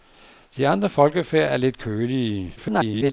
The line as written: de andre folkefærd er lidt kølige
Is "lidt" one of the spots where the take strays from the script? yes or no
no